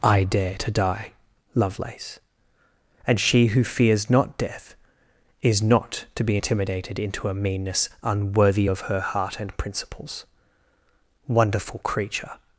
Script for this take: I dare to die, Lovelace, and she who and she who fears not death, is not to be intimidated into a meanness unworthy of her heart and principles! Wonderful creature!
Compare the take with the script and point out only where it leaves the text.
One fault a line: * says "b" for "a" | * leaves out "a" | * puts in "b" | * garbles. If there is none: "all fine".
* leaves out "and she who"